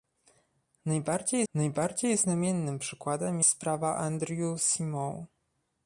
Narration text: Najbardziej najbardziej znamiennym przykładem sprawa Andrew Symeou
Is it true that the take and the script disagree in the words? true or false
false